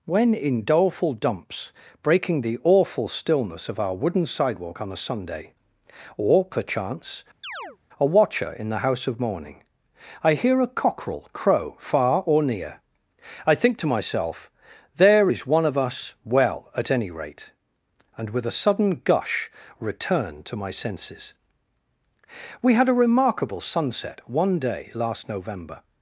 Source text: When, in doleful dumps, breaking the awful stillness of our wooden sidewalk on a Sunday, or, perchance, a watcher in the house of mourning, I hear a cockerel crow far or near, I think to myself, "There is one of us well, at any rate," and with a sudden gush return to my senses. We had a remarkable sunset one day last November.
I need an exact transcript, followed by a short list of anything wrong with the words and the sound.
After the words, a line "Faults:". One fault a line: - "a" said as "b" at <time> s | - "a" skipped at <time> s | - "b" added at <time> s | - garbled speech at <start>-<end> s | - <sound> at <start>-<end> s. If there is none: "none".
When, in doleful dumps, breaking the awful stillness of our wooden sidewalk on a Sunday, or, perchance, a watcher in the house of mourning, I hear a cockerel crow far or near, I think to myself, "There is one of us well, at any rate," and with a sudden gush return to my senses. We had a remarkable sunset one day last November.
Faults:
- chirp at 7.4-7.8 s